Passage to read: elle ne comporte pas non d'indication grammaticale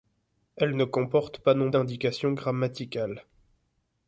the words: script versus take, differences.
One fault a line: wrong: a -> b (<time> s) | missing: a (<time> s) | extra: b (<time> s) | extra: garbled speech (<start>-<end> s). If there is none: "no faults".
no faults